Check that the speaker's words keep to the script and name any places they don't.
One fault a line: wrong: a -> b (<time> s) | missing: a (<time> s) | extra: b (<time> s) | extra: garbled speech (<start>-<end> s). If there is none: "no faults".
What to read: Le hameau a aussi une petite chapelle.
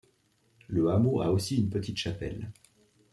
no faults